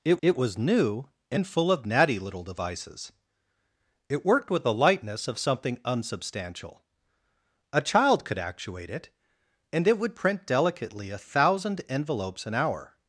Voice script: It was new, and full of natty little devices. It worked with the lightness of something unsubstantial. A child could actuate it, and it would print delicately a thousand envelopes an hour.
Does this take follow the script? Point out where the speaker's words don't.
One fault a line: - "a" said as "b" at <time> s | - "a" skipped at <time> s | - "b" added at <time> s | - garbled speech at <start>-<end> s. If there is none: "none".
- "it" added at 0.2 s